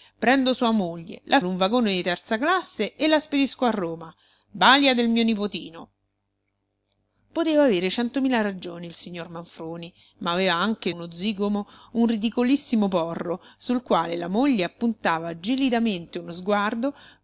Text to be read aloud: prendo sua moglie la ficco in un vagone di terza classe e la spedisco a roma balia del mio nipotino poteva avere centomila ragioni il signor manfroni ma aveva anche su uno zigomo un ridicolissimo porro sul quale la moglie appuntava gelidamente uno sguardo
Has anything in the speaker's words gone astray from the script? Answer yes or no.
yes